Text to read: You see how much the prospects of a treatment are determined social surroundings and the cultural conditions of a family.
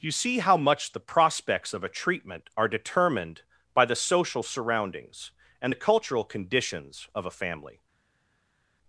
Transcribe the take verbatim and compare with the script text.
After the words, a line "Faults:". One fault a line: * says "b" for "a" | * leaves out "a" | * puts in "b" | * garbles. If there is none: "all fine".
You see how much the prospects of a treatment are determined by the social surroundings and the cultural conditions of a family.
Faults:
* puts in "by the"